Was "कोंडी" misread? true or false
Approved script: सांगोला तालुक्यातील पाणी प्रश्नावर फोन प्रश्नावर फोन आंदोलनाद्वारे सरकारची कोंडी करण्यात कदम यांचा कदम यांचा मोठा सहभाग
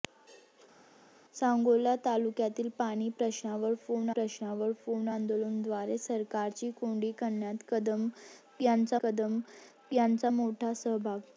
false